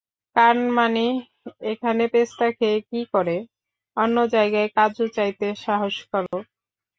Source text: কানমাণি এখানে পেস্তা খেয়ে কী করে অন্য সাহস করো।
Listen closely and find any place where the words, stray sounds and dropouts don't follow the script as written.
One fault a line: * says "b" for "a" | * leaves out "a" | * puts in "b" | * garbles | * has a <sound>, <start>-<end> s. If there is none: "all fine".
* puts in "জায়গায় কাজু চাইতে"
* has a dropout, 6.3-6.3 s